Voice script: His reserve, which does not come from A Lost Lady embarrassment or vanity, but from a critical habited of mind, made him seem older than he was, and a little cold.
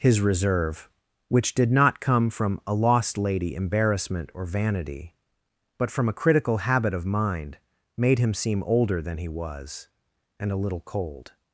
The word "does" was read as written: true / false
false